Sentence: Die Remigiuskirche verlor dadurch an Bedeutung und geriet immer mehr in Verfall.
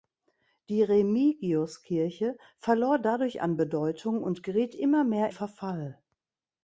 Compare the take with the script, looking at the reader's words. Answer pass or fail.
fail